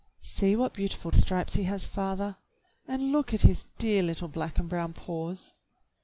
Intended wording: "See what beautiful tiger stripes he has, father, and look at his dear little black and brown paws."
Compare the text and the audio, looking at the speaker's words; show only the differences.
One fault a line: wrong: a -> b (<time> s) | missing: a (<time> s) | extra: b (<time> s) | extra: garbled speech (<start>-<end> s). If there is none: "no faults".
missing: tiger (1.1 s)